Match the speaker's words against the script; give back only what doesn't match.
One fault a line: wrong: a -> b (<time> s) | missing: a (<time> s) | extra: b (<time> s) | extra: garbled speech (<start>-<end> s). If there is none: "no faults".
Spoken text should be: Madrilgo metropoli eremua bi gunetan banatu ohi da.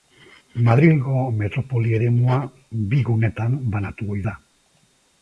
no faults